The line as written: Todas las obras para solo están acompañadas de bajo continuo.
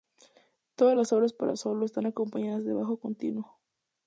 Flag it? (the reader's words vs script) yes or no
no